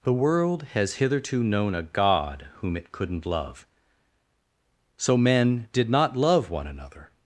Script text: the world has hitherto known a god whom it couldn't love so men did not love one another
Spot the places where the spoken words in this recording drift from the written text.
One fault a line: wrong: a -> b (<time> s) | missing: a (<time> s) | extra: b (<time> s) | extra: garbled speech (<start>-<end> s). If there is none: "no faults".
no faults